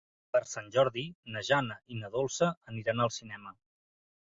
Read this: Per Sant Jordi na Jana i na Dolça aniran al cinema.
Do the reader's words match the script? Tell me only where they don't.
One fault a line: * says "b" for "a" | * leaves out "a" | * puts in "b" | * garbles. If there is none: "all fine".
all fine